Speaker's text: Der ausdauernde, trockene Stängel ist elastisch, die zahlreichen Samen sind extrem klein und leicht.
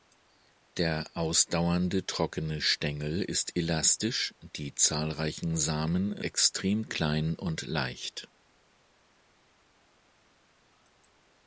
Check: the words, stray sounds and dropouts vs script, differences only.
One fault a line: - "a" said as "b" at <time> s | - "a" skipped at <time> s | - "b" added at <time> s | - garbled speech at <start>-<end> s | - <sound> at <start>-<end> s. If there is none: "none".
- "sind" skipped at 6.2 s